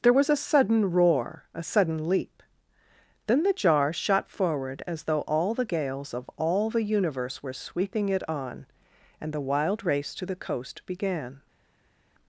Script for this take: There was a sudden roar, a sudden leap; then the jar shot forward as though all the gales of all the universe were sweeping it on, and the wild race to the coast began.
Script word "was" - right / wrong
right